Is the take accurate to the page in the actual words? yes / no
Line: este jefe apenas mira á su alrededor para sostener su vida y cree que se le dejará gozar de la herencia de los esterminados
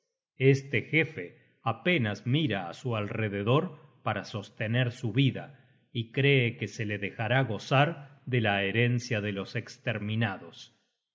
yes